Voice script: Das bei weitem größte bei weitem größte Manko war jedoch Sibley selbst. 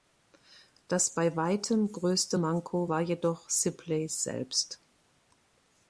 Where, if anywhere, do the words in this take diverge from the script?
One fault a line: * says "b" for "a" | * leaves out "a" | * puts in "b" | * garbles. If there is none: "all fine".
* leaves out "bei weitem größte"